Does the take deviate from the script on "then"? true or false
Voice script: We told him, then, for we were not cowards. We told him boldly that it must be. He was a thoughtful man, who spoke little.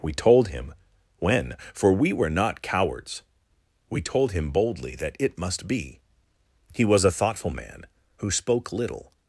true